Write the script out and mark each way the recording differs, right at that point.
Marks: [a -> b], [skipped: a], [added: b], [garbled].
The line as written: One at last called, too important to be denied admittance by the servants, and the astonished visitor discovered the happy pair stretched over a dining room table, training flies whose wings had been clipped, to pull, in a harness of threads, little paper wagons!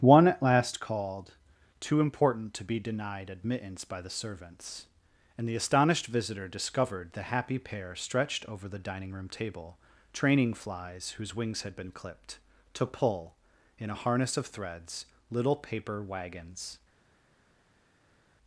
One at last called, too important to be denied admittance by the servants, and the astonished visitor discovered the happy pair stretched over [a -> the] dining room table, training flies whose wings had been clipped, to pull, in a harness of threads, little paper wagons!